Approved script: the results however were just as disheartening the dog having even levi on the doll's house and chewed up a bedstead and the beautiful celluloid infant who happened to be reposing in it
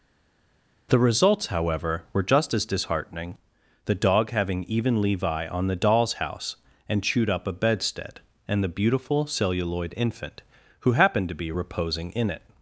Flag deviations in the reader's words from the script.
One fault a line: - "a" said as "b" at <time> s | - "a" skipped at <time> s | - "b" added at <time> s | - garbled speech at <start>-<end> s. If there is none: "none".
none